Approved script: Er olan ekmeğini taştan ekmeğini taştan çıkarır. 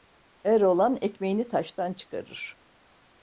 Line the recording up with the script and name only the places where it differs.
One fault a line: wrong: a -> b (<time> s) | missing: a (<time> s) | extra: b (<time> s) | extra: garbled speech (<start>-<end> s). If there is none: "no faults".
missing: ekmeğini taştan (1.9 s)